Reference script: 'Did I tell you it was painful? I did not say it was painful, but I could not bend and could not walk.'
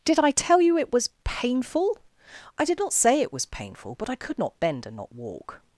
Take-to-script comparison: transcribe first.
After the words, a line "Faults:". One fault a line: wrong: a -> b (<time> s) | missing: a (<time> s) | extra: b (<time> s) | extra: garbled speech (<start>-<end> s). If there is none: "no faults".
'Did I tell you it was painful? I did not say it was painful, but I could not bend and not walk.'
Faults:
missing: could (5.0 s)